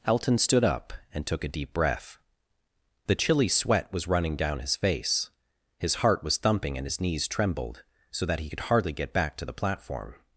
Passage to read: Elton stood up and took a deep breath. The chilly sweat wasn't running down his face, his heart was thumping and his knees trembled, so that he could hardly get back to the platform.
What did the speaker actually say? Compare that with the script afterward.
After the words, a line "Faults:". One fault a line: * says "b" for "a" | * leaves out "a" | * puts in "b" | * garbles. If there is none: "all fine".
Elton stood up and took a deep breath. The chilly sweat was running down his face, his heart was thumping and his knees trembled, so that he could hardly get back to the platform.
Faults:
* says "was" for "wasn't"